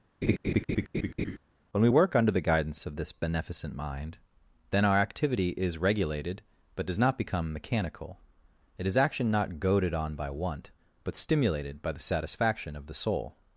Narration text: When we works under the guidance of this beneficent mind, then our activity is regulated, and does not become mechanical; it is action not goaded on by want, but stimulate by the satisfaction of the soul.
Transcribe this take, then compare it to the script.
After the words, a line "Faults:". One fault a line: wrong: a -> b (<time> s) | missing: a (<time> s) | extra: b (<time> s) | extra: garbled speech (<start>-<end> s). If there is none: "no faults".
When we work under the guidance of this beneficent mind, then our activity is regulated, but does not become mechanical; it is action not goaded on by want, but stimulated by the satisfaction of the soul.
Faults:
wrong: works -> work (1.9 s)
wrong: and -> but (6.8 s)
wrong: stimulate -> stimulated (11.2 s)